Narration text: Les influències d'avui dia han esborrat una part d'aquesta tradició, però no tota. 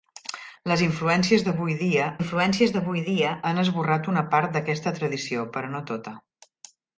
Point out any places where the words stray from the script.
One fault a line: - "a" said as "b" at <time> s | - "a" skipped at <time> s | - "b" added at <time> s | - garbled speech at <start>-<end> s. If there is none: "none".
- "influències d'avui dia" added at 2.2 s